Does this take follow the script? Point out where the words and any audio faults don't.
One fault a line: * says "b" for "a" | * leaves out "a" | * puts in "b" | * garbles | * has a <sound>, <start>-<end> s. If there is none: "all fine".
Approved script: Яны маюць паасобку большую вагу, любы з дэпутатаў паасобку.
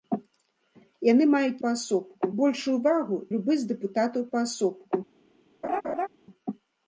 * has a laugh, 5.6-6.1 s